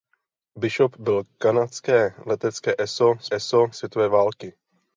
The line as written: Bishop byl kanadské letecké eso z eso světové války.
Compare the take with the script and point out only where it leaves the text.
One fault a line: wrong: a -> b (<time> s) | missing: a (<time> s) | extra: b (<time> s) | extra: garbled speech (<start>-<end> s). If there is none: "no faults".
no faults